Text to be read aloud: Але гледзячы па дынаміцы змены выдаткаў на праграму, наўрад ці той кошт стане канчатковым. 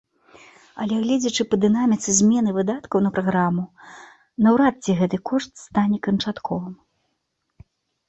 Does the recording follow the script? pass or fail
fail